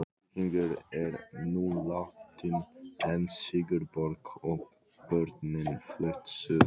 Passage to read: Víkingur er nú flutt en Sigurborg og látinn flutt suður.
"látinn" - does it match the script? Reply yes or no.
no